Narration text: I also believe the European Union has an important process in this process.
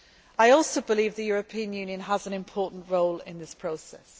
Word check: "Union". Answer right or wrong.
right